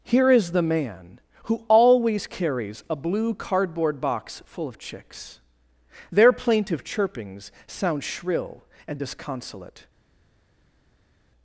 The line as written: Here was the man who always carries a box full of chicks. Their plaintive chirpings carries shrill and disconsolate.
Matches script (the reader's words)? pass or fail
fail